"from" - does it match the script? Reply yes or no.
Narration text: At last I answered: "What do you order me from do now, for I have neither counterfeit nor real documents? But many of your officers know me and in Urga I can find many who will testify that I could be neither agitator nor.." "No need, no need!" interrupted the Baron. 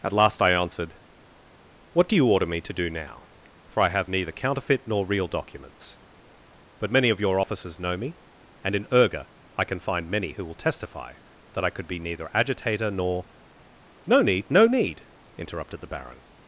no